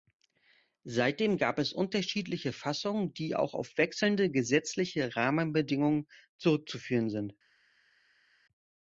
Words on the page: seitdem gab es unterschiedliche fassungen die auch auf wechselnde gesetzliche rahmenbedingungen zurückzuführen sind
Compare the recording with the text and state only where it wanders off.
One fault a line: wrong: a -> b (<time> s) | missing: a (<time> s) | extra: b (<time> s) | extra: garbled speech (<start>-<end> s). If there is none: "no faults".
no faults